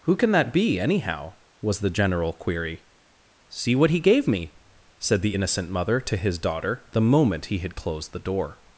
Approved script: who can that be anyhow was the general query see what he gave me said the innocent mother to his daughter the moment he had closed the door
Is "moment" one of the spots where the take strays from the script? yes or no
no